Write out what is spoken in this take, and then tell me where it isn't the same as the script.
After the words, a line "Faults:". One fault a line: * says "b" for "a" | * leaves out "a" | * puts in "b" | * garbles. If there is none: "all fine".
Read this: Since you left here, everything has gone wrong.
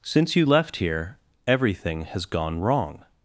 Since you left here, everything has gone wrong.
Faults:
all fine